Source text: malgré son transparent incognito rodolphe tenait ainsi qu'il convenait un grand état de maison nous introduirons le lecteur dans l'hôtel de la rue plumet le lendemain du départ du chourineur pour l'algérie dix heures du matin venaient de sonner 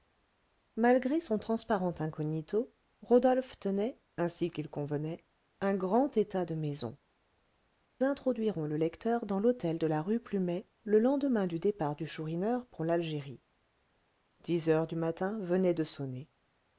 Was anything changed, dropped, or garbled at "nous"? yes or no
yes